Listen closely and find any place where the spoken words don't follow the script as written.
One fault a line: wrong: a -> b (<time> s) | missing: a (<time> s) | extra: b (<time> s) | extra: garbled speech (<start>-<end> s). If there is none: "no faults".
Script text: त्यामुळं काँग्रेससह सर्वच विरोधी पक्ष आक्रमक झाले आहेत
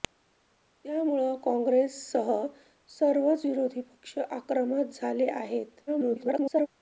extra: garbled speech (5.9-6.7 s)